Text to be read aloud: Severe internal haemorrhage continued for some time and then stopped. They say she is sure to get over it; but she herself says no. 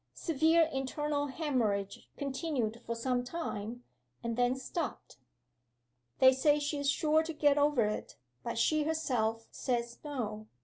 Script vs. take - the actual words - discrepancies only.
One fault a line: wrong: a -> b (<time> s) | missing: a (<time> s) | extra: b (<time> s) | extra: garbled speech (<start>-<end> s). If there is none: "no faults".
no faults